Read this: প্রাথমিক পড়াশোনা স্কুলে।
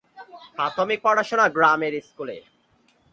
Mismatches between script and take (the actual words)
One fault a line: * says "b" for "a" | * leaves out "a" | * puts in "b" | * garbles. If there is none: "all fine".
* puts in "গ্রামের"